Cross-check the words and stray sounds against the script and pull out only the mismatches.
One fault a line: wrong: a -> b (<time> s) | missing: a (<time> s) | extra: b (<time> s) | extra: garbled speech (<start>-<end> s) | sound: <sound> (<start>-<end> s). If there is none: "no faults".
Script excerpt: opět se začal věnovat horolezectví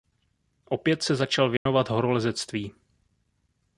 sound: dropout (1.6-1.7 s)